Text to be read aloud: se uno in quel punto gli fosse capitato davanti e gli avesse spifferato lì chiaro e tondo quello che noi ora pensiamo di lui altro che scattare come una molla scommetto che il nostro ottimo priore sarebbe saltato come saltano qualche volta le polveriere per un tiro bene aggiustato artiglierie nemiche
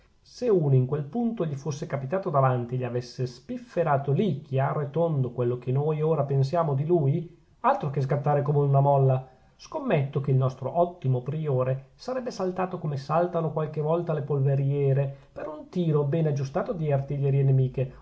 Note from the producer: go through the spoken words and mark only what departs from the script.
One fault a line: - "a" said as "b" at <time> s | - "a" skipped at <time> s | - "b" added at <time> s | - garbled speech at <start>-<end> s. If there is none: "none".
- "di" added at 16.7 s